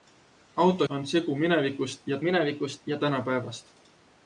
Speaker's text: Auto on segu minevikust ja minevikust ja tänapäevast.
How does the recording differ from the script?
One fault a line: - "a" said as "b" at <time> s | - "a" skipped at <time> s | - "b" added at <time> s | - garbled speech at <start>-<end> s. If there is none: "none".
none